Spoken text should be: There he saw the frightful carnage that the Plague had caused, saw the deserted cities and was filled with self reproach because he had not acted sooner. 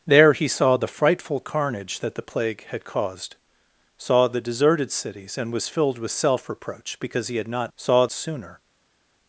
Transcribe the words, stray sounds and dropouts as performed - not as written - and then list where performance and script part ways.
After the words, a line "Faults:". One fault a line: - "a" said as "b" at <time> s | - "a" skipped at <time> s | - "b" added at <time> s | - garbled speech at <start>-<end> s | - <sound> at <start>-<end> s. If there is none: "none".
There he saw the frightful carnage that the Plague had caused, saw the deserted cities and was filled with self reproach because he had not saw sooner.
Faults:
- "acted" said as "saw" at 7.8 s